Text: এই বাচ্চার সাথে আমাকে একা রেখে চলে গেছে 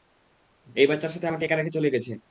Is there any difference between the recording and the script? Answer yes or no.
no